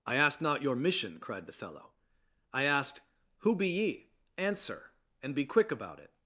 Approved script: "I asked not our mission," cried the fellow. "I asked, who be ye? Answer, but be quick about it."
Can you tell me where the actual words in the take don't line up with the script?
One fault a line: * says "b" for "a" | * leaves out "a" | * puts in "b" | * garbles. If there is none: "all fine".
* says "your" for "our"
* says "and" for "but"